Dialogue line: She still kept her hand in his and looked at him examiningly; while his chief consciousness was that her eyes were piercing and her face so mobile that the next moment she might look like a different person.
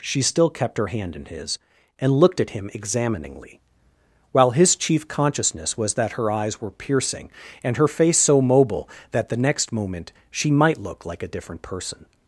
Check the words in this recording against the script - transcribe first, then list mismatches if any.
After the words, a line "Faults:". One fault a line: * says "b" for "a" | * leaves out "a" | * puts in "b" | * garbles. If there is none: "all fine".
She still kept her hand in his and looked at him examiningly; while his chief consciousness was that her eyes were piercing and her face so mobile that the next moment she might look like a different person.
Faults:
all fine